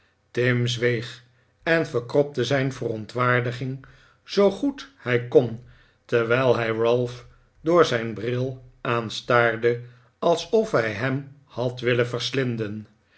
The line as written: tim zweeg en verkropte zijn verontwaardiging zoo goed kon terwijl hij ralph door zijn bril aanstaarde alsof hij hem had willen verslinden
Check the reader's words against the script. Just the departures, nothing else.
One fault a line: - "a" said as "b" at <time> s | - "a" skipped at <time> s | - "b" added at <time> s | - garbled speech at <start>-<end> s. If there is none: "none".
- "hij" added at 5.0 s